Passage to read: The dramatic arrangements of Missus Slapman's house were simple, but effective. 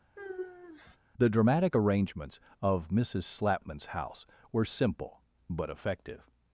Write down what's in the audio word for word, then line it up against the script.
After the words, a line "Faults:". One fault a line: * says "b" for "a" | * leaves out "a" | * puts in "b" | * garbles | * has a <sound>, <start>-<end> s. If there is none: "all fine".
The dramatic arrangements of Missus Slapman's house were simple, but effective.
Faults:
* has a sigh, 0.2-1.0 s